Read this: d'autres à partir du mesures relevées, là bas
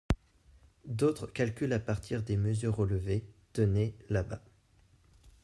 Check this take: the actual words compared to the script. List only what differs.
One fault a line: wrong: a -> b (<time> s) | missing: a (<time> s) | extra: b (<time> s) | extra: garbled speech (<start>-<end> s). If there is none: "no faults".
extra: calculent (1.3 s)
wrong: du -> des (2.2 s)
extra: tenez (3.5 s)